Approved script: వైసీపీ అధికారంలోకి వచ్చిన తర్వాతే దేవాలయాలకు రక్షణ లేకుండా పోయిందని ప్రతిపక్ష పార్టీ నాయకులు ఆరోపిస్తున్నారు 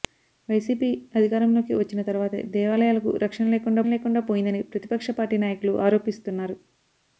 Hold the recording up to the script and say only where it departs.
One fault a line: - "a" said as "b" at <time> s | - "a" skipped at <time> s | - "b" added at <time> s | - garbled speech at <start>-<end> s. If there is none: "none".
- "లేకుండా" added at 3.9 s